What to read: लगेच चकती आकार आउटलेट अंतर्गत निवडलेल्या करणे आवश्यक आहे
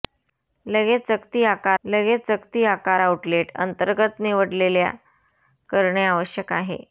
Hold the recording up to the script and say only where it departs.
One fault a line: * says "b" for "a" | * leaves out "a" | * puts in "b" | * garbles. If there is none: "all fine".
* puts in "लगेच चकती आकार"